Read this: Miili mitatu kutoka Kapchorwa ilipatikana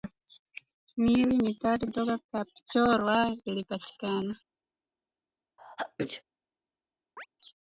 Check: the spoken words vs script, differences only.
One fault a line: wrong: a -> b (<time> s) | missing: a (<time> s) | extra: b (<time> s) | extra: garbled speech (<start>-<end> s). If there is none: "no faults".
no faults